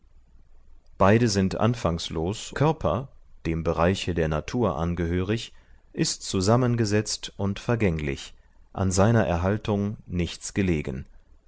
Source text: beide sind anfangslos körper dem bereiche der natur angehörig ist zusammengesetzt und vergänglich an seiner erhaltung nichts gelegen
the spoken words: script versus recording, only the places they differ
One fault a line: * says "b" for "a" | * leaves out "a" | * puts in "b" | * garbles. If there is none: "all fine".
all fine